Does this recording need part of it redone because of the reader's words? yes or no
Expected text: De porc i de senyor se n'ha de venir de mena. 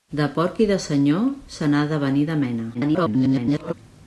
yes